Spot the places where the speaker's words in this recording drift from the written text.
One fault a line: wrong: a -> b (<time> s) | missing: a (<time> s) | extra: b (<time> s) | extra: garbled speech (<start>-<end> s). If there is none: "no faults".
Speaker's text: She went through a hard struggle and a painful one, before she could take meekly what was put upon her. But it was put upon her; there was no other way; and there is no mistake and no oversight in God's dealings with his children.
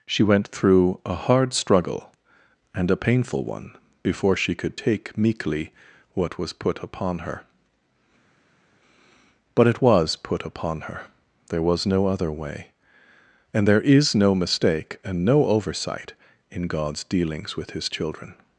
no faults